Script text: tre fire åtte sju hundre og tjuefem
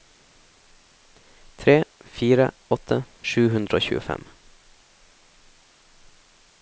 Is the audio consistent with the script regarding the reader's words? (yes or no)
yes